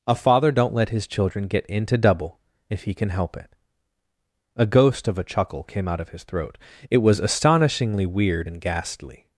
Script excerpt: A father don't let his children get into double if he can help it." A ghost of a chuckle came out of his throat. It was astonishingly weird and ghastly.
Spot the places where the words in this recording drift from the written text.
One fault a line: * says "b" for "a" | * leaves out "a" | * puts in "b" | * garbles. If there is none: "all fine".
all fine